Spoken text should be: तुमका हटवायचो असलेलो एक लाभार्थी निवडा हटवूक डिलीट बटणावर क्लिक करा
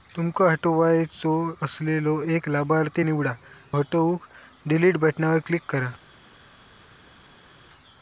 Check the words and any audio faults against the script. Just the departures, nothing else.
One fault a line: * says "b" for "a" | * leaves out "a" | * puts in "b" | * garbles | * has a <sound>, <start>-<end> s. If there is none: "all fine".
all fine